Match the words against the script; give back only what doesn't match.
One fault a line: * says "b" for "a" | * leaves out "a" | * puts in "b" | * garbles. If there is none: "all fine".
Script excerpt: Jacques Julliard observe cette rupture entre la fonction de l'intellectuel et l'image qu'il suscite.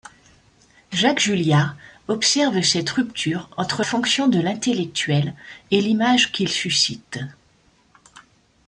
* leaves out "la"